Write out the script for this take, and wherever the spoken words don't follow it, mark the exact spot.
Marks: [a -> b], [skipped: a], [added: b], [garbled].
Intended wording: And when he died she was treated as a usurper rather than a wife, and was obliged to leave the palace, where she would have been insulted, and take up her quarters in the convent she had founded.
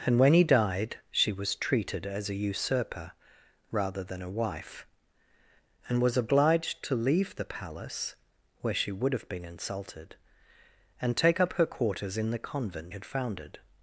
And when he died she was treated as a usurper rather than a wife, and was obliged to leave the palace, where she would have been insulted, and take up her quarters in the convent [skipped: she] had founded.